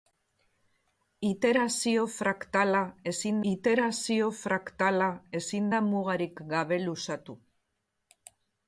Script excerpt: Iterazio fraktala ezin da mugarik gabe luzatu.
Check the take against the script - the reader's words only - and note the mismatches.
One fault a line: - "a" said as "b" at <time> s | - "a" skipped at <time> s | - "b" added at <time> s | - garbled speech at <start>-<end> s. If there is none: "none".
- "iterazio fraktala ezin" added at 3.5 s